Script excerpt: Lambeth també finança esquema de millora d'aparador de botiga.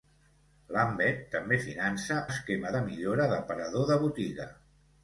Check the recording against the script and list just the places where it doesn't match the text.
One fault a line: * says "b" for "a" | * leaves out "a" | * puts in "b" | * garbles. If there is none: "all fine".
all fine